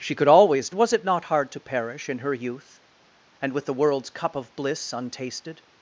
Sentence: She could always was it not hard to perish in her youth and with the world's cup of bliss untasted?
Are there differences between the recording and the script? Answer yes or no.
no